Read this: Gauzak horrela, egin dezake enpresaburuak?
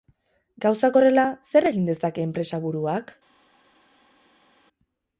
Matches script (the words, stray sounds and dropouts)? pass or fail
fail